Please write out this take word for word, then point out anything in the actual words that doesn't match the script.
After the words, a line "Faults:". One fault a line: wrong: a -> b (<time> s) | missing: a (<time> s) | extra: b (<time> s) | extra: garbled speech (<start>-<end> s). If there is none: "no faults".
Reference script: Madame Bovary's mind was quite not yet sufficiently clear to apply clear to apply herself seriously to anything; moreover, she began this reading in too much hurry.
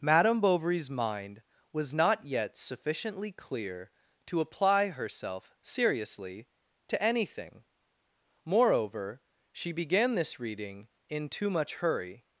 Madame Bovary's mind was not yet sufficiently clear to apply herself seriously to anything; moreover, she began this reading in too much hurry.
Faults:
missing: quite (1.9 s)
missing: clear to apply (4.9 s)